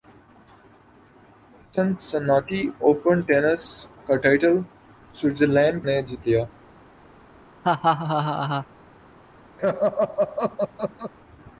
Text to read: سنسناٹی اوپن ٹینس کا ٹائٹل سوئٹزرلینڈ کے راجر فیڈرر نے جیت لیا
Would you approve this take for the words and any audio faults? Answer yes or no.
no